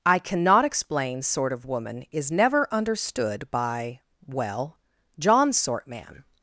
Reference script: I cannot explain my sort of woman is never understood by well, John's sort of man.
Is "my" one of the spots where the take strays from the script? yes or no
yes